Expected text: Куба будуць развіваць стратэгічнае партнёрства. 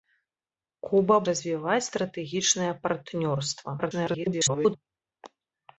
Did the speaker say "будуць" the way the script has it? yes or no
no